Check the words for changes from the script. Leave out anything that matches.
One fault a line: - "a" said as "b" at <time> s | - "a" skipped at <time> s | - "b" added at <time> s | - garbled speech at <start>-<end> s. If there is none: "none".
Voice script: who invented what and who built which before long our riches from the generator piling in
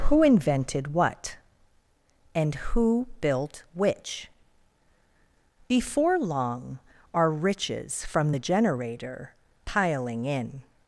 none